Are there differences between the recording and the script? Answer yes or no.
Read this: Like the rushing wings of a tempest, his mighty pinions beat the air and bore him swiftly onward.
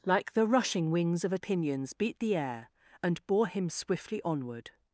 yes